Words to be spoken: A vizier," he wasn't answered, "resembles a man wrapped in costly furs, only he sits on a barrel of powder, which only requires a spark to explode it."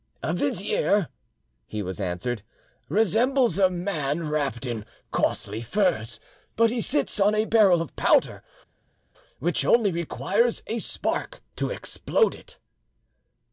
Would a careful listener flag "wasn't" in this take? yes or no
yes